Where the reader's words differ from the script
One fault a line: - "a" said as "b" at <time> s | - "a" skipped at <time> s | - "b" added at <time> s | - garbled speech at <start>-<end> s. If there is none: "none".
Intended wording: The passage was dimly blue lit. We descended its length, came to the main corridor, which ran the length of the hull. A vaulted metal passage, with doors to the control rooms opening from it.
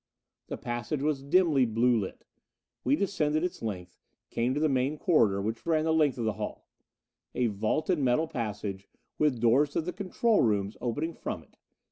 none